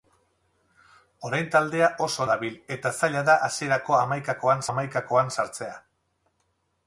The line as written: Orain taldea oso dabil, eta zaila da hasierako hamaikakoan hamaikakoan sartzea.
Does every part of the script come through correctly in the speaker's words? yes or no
yes